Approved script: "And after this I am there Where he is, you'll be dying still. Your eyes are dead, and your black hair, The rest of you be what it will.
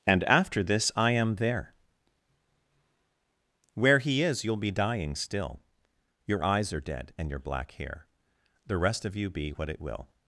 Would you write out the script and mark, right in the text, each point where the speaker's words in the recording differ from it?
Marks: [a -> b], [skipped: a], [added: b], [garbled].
"And after this I am there Where he is, you'll be dying still. Your eyes are dead, and your black hair, The rest of you be what it will.